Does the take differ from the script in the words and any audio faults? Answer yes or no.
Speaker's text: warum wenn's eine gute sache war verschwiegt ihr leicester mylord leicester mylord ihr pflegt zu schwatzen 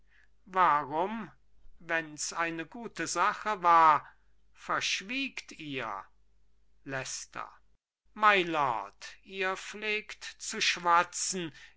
yes